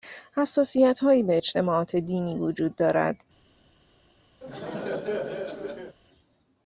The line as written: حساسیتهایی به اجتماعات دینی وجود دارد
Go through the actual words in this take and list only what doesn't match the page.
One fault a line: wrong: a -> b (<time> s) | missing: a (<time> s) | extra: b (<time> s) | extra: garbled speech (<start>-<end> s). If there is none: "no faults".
no faults